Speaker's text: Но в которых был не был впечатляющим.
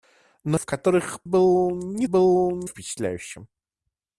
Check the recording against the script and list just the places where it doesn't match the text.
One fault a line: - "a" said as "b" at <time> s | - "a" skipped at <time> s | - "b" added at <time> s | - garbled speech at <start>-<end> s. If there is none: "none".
none